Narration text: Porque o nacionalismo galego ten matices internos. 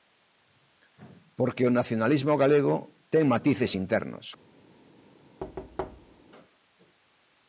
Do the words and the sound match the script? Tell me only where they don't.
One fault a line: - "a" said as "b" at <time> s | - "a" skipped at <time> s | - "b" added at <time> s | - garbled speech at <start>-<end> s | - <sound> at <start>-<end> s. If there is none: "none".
- thud at 5.4-6.2 s